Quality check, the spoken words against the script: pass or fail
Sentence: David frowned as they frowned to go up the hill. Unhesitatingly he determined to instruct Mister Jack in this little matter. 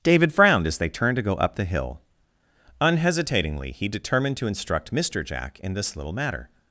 fail